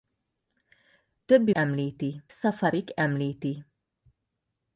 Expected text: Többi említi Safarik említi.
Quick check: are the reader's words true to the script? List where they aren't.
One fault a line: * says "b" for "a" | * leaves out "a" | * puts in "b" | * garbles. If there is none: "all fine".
all fine